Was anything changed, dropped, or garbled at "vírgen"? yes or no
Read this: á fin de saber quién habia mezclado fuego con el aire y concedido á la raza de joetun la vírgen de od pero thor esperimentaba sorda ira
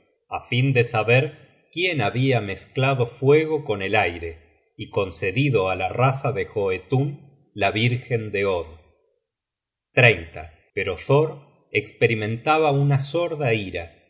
no